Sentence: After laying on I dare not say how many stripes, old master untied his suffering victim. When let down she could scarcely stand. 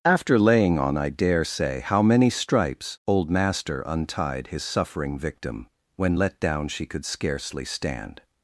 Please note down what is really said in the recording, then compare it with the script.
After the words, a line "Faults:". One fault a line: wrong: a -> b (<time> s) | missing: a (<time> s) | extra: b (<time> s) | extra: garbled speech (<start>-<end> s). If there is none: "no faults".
After laying on I dare say how many stripes, old master untied his suffering victim. When let down she could scarcely stand.
Faults:
missing: not (1.4 s)